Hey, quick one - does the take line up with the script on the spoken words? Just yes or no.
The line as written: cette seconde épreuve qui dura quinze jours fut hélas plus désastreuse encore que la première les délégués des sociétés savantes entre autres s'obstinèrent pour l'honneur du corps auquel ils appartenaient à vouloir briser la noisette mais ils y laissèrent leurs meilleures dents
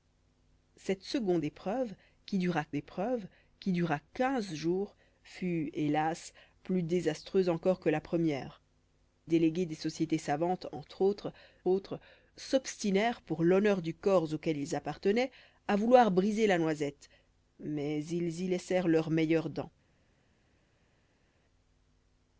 no